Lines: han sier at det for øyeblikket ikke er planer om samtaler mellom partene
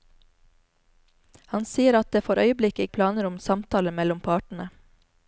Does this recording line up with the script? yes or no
no